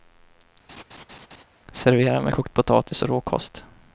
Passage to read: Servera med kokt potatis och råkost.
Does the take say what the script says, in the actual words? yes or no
yes